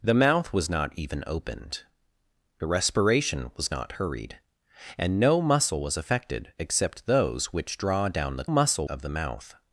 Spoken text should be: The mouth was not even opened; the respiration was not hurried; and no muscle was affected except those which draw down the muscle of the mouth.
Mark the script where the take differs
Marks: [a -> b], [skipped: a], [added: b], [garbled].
The mouth was not even opened; the respiration was not hurried; and no muscle was affected except those which draw down the muscle of the mouth.